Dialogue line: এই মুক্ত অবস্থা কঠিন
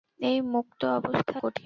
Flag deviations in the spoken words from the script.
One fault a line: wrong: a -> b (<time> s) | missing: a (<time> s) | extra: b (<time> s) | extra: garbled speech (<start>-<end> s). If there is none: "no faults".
no faults